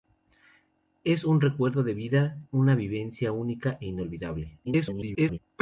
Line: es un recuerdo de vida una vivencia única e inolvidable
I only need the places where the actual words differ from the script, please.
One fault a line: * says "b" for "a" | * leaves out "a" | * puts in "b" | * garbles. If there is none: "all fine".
* garbles